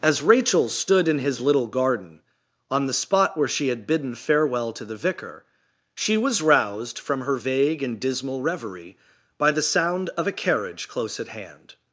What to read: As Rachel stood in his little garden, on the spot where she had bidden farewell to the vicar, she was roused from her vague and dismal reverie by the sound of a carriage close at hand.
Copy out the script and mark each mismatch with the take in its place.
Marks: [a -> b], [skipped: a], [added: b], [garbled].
As Rachel stood in his little garden, on the spot where she had bidden farewell to the vicar, she was roused from her vague and dismal reverie by the sound of a carriage close at hand.